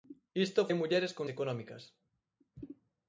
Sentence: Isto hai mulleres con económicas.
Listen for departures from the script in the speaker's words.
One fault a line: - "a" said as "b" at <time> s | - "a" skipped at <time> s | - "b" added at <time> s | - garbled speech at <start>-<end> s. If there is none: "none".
none